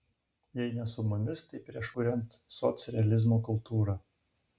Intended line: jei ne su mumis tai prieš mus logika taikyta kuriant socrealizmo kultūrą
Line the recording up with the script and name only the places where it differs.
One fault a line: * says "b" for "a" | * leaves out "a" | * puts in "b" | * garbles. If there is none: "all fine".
* leaves out "mus logika taikyta"